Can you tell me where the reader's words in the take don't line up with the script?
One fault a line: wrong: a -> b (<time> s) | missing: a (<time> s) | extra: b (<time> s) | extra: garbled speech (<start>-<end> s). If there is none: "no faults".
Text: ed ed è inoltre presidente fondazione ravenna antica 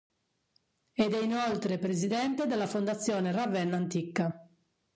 missing: ed (1.1 s)
extra: della (2.5 s)